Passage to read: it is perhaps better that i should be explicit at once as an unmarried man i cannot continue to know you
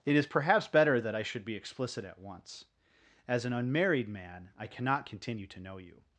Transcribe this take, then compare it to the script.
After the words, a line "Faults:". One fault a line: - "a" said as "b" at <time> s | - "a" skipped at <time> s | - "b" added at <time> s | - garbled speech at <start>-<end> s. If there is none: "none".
it is perhaps better that i should be explicit at once as an unmarried man i cannot continue to know you
Faults:
none